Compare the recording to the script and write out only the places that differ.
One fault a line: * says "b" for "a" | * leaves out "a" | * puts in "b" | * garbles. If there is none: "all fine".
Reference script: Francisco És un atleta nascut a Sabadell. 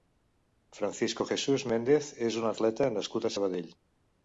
* puts in "Jesús Méndez"